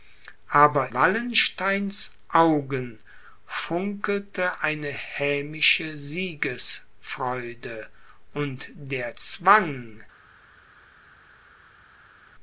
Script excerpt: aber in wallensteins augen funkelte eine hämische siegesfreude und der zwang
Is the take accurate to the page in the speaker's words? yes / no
no